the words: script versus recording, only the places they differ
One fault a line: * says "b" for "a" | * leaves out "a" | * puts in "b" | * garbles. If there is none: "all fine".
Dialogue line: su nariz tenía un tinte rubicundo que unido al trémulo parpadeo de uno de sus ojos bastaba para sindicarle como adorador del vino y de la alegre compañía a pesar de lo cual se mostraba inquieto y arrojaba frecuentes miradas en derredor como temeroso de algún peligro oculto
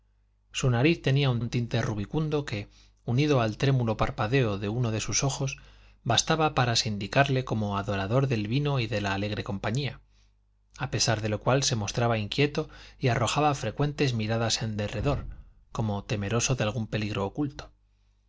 * puts in "un"